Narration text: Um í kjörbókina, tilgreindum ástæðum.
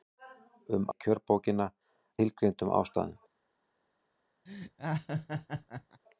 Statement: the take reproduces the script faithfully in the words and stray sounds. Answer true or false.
false